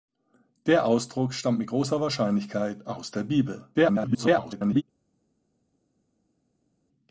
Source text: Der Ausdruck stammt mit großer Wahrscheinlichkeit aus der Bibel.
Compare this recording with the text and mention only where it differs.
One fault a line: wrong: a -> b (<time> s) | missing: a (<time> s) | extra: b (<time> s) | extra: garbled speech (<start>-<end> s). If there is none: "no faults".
extra: garbled speech (3.7-4.8 s)